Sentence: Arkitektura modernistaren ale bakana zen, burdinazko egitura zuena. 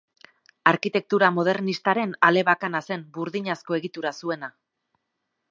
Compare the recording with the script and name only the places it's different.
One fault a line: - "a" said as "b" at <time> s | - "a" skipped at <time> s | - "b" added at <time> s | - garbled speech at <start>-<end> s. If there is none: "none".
none